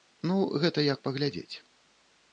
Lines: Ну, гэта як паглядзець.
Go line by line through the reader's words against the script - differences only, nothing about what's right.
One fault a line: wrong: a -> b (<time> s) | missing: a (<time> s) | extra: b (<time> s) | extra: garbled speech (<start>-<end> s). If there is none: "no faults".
no faults